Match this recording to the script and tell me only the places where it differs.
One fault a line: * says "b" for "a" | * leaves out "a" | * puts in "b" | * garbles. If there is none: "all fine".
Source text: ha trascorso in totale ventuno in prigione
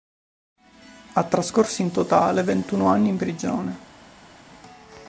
* puts in "anni"